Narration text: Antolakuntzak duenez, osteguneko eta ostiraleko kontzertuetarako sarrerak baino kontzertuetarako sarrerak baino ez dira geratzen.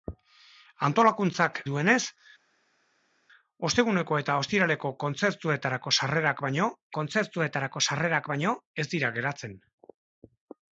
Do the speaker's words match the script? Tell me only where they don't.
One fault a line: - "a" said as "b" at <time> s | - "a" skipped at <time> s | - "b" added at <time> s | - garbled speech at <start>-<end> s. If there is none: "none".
none